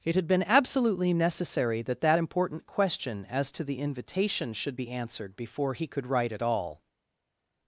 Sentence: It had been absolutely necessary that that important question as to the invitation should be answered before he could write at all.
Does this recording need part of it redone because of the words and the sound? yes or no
no